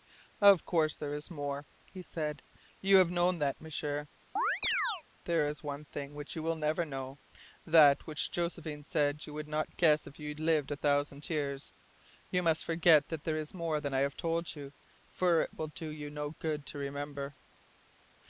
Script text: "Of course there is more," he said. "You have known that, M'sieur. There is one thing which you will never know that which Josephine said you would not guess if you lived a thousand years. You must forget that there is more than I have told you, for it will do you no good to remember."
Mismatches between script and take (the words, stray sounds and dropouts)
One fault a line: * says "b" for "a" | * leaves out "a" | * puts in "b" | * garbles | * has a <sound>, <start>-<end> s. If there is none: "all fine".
* has a chirp, 4.4-5.0 s